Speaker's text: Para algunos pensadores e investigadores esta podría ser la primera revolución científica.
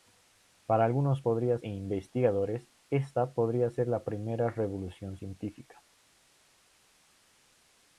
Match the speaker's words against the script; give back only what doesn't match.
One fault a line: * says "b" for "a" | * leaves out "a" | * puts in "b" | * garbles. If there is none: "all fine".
* says "podría" for "pensadores"